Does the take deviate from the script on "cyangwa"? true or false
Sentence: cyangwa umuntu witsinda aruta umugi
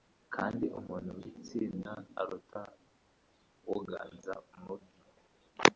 true